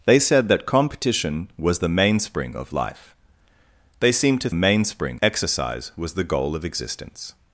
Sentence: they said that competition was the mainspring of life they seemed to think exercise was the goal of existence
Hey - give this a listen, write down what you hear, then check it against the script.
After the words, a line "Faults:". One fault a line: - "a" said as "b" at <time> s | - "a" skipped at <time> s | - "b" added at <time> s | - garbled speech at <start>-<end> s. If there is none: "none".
they said that competition was the mainspring of life they seemed to mainspring exercise was the goal of existence
Faults:
- "think" said as "mainspring" at 4.5 s